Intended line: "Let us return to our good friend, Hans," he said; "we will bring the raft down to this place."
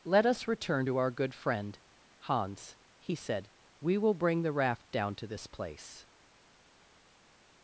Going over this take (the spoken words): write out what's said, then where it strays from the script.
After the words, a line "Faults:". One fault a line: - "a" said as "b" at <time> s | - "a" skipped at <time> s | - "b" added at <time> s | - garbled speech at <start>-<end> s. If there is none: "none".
"Let us return to our good friend, Hans," he said; "we will bring the raft down to this place."
Faults:
none